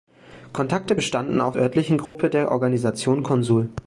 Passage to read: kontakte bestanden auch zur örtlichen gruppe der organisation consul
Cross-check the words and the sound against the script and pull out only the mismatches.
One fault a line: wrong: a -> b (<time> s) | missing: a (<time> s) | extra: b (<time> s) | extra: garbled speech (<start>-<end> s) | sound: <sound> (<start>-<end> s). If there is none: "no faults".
missing: zur (1.6 s)
sound: dropout (2.1-2.1 s)